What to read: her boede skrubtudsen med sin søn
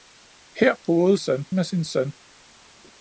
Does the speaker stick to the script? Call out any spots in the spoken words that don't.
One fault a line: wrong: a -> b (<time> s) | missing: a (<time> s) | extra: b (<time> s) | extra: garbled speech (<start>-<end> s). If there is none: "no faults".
wrong: skrubtudsen -> søn (1.2 s)